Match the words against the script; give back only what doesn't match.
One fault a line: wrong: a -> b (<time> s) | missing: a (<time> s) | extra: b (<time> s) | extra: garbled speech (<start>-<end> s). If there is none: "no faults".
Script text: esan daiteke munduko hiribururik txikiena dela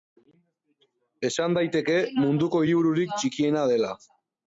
no faults